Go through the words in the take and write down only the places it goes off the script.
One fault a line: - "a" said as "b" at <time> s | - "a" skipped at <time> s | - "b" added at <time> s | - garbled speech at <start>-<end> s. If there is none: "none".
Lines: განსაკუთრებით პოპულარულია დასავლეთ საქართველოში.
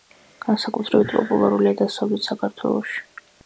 none